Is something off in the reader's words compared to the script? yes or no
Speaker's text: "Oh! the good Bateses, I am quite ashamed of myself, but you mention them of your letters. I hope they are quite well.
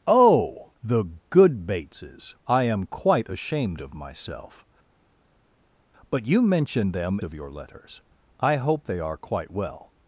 no